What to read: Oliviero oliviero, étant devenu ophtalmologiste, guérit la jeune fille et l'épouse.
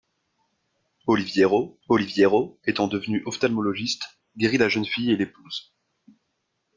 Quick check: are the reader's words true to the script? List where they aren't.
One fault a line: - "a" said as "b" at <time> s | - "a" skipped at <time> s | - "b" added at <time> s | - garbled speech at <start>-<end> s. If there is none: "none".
none